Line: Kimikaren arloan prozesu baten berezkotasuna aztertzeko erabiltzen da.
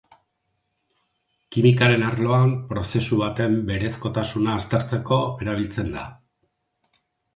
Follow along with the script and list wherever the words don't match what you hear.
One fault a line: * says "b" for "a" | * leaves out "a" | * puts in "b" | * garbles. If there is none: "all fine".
all fine